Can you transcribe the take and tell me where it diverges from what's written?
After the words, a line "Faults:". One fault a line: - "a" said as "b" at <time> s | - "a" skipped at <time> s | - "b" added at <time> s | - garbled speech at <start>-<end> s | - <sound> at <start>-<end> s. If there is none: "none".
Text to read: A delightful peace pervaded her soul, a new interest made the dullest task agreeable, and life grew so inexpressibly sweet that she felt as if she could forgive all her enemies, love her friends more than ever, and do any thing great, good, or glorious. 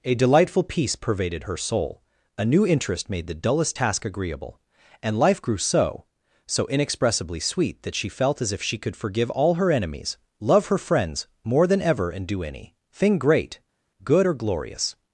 A delightful peace pervaded her soul, a new interest made the dullest task agreeable, and life grew so so inexpressibly sweet that she felt as if she could forgive all her enemies, love her friends more than ever, and do any thing great, good, or glorious.
Faults:
- "so" added at 6.5 s